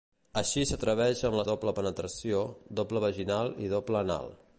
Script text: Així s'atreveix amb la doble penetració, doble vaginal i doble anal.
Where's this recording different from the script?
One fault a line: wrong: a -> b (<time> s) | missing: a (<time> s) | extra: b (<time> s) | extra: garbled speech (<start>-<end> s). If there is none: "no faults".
no faults